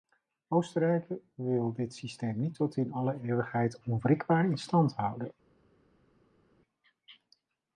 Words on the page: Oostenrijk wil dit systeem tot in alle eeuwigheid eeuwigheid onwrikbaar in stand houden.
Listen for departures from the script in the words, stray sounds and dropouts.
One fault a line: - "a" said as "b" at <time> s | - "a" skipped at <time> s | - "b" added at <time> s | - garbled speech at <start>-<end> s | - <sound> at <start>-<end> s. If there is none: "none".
- "niet" added at 2.4 s
- "eeuwigheid" skipped at 3.8 s